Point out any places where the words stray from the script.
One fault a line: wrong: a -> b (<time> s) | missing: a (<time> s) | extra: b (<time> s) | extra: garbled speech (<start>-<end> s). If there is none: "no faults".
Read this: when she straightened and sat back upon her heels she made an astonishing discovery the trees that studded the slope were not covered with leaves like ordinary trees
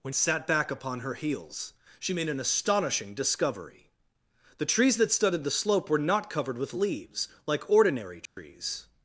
missing: she straightened and (0.1 s)